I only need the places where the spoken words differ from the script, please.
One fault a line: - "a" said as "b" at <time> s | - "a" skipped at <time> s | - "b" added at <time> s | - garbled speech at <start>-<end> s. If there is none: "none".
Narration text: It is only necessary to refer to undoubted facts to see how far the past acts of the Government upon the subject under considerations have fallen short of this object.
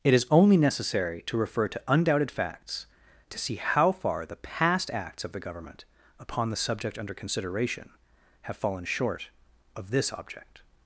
- "considerations" said as "consideration" at 7.1 s